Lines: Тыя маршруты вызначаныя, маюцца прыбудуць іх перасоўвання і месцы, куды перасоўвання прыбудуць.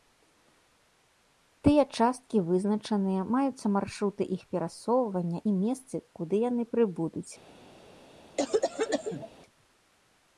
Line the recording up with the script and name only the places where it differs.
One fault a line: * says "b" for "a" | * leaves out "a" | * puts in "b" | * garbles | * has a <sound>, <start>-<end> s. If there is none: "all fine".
* says "часткі" for "маршруты"
* says "маршруты" for "прыбудуць"
* says "яны" for "перасоўвання"
* has a cough, 8.4-9.3 s